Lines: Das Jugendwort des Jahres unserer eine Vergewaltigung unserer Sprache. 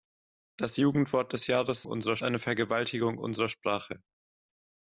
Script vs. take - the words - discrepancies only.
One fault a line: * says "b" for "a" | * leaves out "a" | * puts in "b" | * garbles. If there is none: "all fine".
all fine